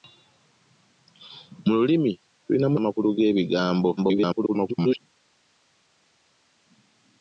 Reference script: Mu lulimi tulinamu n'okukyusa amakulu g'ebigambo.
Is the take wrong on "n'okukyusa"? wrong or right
wrong